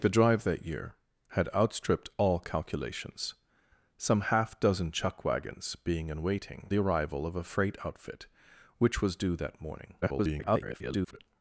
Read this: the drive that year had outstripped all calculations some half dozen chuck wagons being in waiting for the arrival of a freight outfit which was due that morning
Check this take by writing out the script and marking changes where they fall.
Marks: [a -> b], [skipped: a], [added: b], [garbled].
the drive that year had outstripped all calculations some half dozen chuck wagons being in waiting [skipped: for] the arrival of a freight outfit which was due that morning [garbled]